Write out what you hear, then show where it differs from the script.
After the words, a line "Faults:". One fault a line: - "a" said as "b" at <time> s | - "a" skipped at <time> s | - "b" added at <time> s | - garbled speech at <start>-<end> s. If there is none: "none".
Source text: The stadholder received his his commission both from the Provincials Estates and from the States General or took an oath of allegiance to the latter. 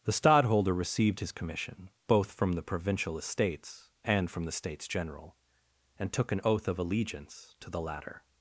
The stadholder received his commission both from the Provincial Estates and from the States General and took an oath of allegiance to the latter.
Faults:
- "his" skipped at 1.3 s
- "Provincials" said as "Provincial" at 2.6 s
- "or" said as "and" at 6.0 s